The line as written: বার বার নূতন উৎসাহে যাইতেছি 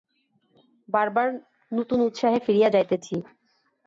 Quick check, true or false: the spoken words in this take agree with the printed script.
false